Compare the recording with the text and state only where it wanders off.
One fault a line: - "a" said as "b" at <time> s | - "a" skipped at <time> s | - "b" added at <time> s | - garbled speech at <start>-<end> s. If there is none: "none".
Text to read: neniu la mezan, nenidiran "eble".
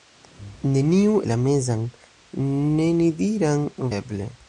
none